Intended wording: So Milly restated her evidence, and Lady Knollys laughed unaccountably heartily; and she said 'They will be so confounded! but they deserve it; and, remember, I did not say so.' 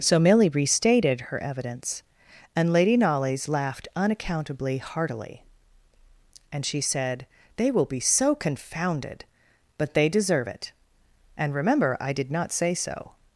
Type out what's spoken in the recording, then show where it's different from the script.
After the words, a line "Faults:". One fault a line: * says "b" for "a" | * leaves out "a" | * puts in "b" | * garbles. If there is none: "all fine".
So Milly restated her evidence, and Lady Knollys laughed unaccountably heartily; and she said 'They will be so confounded! but they deserve it; and, remember, I did not say so.'
Faults:
all fine